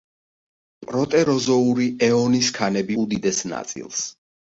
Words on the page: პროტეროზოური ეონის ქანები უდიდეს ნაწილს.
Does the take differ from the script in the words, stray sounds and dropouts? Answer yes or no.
no